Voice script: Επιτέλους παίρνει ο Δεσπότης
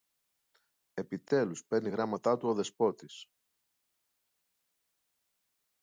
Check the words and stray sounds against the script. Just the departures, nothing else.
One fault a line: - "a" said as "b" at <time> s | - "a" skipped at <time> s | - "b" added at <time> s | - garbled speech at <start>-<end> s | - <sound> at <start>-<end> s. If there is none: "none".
- "γράμματα του" added at 1.9 s